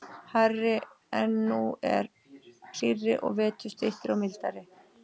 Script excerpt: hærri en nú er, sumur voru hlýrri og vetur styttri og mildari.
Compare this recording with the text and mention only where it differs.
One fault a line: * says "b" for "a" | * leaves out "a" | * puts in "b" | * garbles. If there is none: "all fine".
* leaves out "sumur voru"